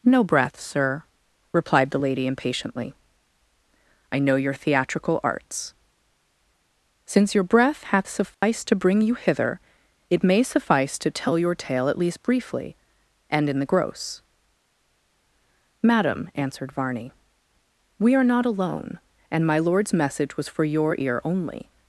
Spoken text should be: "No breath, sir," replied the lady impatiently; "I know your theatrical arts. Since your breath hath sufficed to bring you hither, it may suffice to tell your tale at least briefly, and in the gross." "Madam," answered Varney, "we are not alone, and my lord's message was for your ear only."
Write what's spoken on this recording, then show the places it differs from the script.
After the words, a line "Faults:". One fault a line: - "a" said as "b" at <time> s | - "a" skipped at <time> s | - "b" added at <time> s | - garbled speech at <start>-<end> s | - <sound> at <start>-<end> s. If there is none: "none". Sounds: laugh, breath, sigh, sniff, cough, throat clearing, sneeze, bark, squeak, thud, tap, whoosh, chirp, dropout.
"No breath, sir," replied the lady impatiently; "I know your theatrical arts. Since your breath hath sufficed to bring you hither, it may suffice to tell your tale at least briefly, and in the gross." "Madam," answered Varney, "we are not alone, and my lord's message was for your ear only."
Faults:
- dropout at 8.3-8.4 s